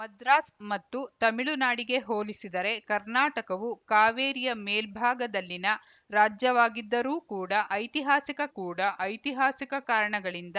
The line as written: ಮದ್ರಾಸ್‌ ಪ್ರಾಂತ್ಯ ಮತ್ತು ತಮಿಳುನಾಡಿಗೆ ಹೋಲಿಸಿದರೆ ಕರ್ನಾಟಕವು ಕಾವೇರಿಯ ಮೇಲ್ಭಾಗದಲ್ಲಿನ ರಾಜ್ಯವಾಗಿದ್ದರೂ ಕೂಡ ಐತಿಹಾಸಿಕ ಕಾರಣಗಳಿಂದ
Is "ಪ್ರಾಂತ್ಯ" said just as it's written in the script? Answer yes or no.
no